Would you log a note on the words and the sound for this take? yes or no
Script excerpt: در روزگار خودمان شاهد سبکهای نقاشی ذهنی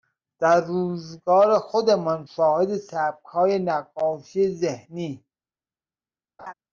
yes